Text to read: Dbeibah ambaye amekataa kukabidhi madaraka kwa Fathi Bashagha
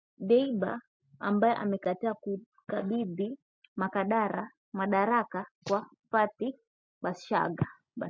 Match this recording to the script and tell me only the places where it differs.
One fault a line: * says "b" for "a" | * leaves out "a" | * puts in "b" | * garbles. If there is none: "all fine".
all fine